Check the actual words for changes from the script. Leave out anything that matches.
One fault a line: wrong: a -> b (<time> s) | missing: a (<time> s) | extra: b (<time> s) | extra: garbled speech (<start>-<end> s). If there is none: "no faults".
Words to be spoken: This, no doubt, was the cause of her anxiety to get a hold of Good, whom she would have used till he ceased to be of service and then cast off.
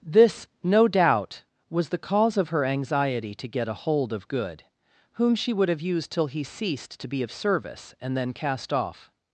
no faults